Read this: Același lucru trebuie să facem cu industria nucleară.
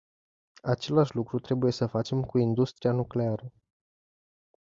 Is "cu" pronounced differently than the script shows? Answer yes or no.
no